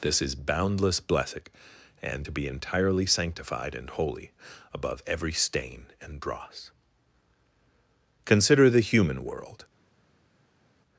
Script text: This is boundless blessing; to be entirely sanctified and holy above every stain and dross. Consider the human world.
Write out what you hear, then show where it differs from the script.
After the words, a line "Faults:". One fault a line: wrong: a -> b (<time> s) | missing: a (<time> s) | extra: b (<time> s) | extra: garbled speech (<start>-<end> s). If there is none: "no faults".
This is boundless blessing; and to be entirely sanctified and holy above every stain and dross. Consider the human world.
Faults:
extra: and (2.0 s)